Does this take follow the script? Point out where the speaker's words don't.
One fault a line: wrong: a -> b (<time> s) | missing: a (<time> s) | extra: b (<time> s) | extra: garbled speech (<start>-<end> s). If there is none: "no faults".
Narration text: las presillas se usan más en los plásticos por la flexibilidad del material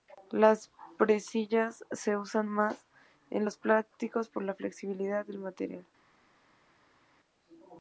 no faults